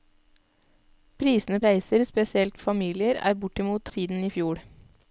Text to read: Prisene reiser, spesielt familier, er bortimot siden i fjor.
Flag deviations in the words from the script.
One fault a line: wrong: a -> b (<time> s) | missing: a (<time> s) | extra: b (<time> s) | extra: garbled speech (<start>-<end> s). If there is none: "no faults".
no faults